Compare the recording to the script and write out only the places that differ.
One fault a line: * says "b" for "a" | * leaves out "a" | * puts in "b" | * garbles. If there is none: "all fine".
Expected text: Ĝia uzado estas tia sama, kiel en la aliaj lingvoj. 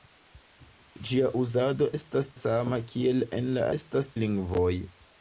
* leaves out "tia"
* says "estas" for "aliaj"